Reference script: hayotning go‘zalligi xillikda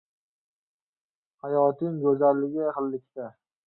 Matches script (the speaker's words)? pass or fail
pass